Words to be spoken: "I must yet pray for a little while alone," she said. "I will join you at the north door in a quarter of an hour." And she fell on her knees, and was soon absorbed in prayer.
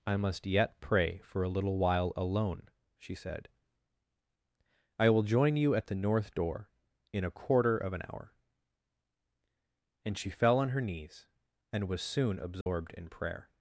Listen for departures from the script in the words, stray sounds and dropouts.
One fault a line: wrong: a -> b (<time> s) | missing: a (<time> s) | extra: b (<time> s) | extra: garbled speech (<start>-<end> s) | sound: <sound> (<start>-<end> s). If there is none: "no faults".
sound: dropout (12.6-12.7 s)